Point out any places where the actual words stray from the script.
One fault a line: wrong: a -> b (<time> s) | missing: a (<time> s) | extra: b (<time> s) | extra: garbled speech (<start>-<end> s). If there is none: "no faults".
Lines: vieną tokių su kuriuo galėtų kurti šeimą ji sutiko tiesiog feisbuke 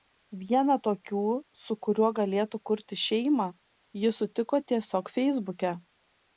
no faults